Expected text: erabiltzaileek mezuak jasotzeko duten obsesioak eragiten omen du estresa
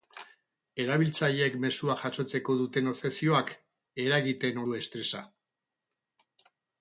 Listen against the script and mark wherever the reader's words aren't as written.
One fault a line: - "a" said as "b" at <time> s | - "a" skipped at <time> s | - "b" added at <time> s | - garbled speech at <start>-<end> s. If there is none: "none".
- "omen" skipped at 4.6 s